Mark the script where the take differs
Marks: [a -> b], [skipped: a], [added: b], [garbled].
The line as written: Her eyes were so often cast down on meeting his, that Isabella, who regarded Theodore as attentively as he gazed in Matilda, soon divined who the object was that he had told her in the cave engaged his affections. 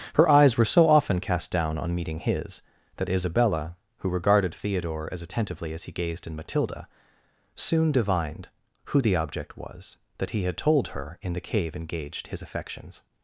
Her eyes were so often cast down on meeting his, that Isabella, who regarded Theodore as attentively as he gazed in Matilda, soon divined who the object was that he had told her in the cave engaged his affections.